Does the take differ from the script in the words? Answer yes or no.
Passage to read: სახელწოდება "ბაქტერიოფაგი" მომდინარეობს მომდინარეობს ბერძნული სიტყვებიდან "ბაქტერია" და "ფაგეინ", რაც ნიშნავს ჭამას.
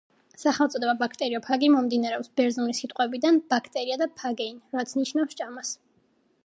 yes